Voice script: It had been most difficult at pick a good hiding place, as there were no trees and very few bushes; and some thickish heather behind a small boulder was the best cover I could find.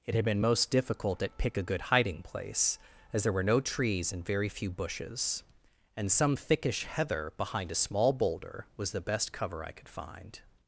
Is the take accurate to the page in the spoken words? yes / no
yes